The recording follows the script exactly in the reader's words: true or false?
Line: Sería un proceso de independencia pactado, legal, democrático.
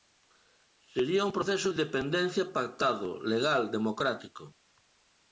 false